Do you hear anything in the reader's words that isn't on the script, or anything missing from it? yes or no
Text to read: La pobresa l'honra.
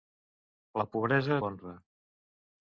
no